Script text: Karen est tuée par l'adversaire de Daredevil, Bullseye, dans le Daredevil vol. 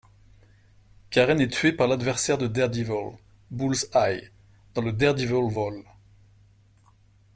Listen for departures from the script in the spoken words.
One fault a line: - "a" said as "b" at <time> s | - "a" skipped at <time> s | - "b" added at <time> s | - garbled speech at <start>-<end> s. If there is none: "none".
none